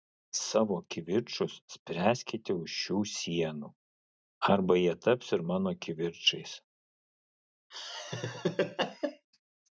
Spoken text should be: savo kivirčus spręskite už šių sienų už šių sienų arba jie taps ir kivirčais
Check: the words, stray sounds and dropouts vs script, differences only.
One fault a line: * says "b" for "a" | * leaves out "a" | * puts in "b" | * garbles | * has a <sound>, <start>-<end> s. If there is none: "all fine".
* leaves out "už šių sienų"
* puts in "mano"
* has a laugh, 7.7-9.3 s